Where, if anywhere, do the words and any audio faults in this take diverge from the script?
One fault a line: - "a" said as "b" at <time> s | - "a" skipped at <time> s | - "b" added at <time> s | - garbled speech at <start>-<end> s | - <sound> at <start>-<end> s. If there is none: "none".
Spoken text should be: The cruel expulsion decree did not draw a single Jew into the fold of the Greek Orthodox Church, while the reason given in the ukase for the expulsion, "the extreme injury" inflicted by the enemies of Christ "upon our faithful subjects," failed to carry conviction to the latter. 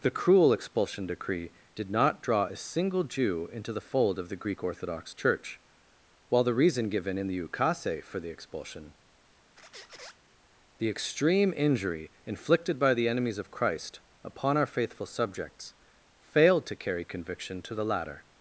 - squeak at 9.6-10.2 s